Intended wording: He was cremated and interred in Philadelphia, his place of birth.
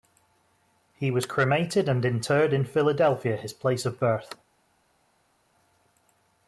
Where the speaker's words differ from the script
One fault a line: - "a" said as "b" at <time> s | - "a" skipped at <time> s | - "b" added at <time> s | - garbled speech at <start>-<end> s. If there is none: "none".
none